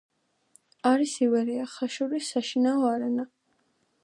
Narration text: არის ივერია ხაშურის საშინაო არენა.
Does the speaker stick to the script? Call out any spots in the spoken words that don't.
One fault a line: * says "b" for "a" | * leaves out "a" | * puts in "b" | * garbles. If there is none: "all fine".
all fine